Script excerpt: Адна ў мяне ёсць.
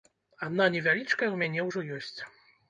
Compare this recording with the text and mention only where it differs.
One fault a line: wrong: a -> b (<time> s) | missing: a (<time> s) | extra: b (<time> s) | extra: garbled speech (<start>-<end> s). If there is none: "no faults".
extra: невялічкая (0.8 s)
extra: ўжо (1.7 s)